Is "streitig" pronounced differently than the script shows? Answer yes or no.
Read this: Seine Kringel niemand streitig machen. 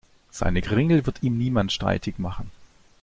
no